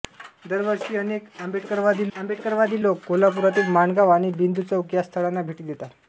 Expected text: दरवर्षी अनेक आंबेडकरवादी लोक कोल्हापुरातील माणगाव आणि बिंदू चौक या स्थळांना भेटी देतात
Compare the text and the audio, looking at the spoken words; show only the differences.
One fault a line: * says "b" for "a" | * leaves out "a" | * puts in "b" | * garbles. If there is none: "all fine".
* puts in "आंबेडकरवादी"